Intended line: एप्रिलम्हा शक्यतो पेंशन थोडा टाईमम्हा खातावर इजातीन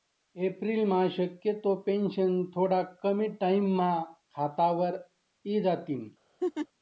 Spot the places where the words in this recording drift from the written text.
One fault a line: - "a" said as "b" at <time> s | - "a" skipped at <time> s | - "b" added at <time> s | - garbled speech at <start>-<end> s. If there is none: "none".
- "कमी" added at 3.0 s